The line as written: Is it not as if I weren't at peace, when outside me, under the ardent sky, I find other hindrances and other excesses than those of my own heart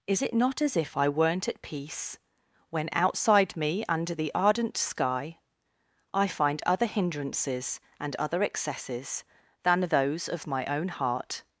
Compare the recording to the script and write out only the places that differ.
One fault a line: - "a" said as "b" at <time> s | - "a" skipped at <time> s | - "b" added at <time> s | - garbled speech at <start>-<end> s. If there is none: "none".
none